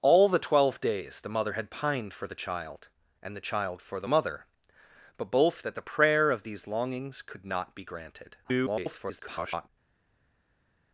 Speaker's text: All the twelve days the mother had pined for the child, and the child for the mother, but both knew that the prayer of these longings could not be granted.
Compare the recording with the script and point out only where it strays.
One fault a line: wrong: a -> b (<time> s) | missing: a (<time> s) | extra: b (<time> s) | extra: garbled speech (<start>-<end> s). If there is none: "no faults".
missing: knew (5.6 s)
extra: garbled speech (8.4-9.7 s)